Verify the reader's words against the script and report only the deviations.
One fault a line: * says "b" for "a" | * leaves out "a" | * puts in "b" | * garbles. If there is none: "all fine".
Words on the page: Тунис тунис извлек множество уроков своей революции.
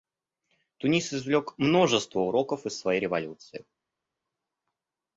* leaves out "тунис"
* puts in "из"